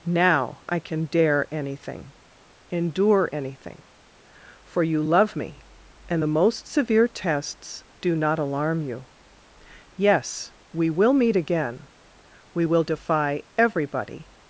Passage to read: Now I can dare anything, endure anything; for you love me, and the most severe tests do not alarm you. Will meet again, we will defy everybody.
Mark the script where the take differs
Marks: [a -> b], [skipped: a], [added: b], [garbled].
Now I can dare anything, endure anything; for you love me, and the most severe tests do not alarm you. [added: Yes we] Will meet again, we will defy everybody.